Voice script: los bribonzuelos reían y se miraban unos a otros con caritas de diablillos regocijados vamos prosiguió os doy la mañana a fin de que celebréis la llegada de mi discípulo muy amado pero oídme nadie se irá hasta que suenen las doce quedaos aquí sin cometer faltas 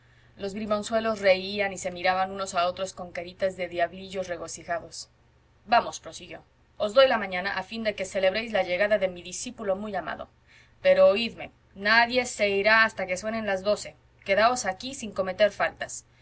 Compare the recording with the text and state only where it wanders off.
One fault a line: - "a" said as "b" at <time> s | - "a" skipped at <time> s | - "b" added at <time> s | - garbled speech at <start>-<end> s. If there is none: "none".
none